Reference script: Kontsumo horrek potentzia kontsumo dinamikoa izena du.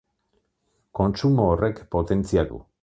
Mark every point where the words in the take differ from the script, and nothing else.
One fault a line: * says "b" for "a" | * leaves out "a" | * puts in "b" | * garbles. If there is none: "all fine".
* leaves out "kontsumo dinamikoa izena"